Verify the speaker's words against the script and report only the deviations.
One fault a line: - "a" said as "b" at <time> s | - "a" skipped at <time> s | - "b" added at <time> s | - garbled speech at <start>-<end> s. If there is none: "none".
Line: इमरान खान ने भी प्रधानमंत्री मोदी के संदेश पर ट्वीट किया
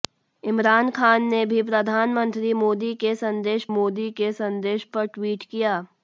- "मोदी के संदेश" added at 3.7 s